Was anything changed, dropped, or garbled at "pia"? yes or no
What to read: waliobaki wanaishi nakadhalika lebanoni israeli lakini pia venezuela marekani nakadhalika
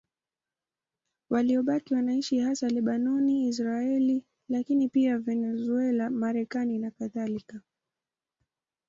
no